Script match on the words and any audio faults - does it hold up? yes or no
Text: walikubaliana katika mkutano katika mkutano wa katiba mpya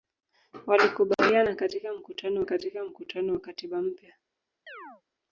no